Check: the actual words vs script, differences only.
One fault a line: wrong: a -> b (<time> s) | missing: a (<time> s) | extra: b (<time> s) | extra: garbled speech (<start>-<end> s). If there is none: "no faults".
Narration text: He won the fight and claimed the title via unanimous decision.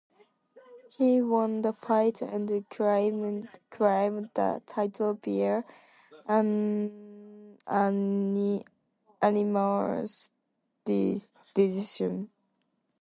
no faults